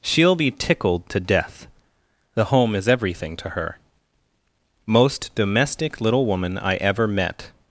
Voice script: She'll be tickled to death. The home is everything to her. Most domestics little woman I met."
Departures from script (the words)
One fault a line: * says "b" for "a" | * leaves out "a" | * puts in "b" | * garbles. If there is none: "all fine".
* says "domestic" for "domestics"
* puts in "ever"